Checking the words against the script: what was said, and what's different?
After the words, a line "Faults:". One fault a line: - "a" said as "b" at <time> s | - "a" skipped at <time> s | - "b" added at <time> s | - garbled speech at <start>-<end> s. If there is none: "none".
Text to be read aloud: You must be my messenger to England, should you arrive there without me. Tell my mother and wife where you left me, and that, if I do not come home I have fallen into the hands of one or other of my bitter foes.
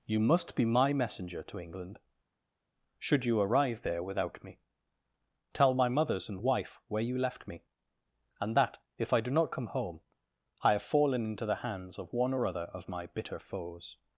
You must be my messenger to England, should you arrive there without me. Tell my mothers and wife where you left me, and that, if I do not come home I have fallen into the hands of one or other of my bitter foes.
Faults:
- "mother" said as "mothers" at 5.9 s